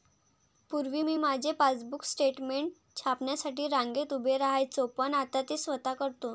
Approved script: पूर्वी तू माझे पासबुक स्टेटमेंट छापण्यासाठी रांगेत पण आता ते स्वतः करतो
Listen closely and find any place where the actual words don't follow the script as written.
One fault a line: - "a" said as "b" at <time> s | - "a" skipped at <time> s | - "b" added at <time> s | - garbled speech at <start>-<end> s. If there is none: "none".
- "तू" said as "मी" at 1.0 s
- "उभे राहायचो" added at 4.1 s